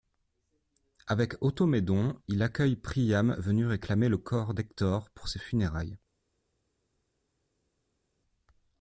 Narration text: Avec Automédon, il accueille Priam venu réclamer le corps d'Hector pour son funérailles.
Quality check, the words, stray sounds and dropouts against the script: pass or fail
fail